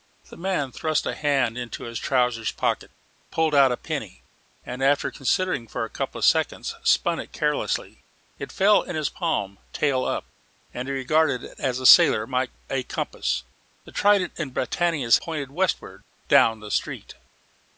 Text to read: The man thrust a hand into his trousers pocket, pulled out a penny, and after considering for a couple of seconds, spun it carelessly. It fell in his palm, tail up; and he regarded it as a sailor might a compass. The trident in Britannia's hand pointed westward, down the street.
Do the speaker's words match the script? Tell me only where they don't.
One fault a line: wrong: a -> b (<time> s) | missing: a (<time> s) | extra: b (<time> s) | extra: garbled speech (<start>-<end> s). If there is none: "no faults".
missing: hand (15.2 s)